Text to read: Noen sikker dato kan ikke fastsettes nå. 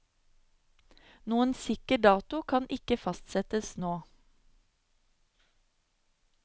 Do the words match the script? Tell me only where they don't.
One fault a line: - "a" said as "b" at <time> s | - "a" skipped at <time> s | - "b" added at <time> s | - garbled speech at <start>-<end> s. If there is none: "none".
none